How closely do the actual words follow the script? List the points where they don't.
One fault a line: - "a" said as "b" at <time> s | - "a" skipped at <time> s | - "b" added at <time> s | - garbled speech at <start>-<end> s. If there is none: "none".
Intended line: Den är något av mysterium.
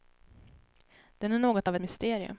none